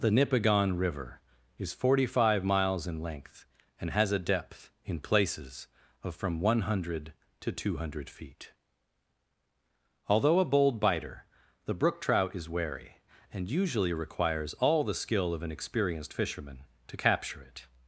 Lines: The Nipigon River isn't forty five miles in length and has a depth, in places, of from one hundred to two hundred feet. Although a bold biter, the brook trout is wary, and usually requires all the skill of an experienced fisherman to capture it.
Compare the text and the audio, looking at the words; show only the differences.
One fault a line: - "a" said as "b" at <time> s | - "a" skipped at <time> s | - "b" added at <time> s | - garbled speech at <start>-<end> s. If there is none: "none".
- "isn't" said as "is" at 1.6 s